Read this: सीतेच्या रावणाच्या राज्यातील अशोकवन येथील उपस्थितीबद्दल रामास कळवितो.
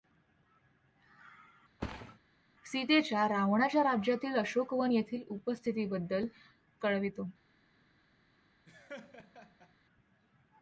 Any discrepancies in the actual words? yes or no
yes